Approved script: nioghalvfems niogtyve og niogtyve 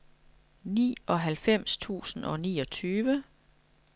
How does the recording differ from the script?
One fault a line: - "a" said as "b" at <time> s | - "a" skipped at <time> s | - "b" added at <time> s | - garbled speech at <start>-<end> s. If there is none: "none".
- "niogtyve" said as "tusind" at 1.8 s